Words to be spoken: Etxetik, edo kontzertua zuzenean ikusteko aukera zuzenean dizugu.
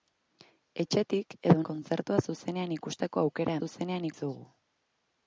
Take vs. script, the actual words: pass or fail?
pass